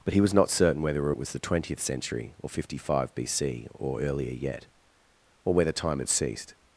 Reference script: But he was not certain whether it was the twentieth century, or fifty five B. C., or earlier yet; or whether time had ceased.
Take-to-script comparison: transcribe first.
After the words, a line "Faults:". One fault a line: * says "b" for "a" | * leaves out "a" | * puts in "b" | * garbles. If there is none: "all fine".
But he was not certain whether it was the twentieth century, or fifty five B. C., or earlier yet; or whether time had ceased.
Faults:
all fine